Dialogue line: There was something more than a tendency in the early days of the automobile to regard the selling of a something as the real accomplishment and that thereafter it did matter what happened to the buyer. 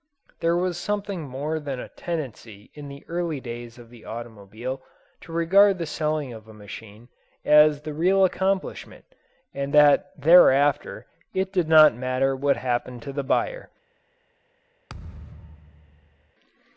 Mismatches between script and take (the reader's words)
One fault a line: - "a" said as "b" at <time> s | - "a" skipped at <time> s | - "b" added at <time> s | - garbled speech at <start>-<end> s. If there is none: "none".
- "something" said as "machine" at 6.5 s
- "not" added at 11.7 s